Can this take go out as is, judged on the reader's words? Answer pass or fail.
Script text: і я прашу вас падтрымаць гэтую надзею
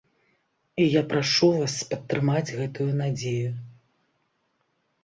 pass